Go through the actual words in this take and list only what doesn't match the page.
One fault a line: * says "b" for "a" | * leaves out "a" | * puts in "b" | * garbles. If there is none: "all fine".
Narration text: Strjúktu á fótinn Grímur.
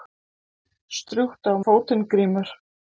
all fine